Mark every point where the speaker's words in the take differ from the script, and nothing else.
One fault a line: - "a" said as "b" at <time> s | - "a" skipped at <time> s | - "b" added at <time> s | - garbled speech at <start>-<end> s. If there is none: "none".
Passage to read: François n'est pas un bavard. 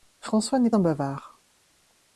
- "pas" skipped at 0.7 s